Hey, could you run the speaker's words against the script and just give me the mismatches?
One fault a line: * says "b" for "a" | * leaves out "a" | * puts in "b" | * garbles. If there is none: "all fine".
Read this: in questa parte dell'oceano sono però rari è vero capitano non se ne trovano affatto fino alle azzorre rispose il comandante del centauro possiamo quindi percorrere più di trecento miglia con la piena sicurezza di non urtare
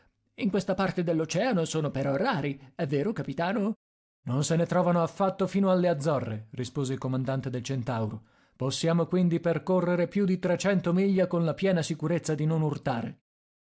all fine